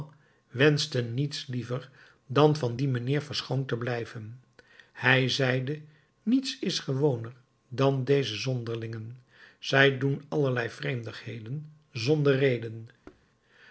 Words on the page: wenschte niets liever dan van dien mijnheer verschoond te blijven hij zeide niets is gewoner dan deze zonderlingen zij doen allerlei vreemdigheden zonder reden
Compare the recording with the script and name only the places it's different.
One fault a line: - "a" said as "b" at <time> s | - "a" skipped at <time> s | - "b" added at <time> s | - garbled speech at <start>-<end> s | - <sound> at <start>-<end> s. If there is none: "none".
- thud at 13.0-13.3 s